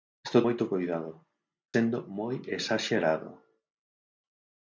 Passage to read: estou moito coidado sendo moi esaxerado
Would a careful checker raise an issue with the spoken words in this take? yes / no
no